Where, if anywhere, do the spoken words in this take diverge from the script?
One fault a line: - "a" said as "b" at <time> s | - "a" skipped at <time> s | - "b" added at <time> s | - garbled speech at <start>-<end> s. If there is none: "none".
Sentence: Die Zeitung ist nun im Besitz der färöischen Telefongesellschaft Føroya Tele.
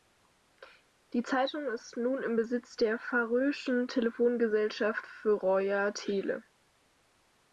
none